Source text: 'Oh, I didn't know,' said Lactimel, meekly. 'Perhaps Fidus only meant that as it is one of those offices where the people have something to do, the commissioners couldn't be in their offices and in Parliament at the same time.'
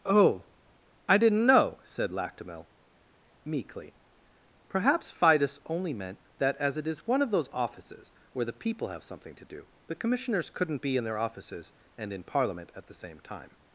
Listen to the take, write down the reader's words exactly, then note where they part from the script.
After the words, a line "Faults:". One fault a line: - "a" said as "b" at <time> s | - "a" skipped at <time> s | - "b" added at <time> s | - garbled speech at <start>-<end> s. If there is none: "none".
'Oh, I didn't know,' said Lactimel, meekly. 'Perhaps Fidus only meant that as it is one of those offices where the people have something to do, the commissioners couldn't be in their offices and in Parliament at the same time.'
Faults:
none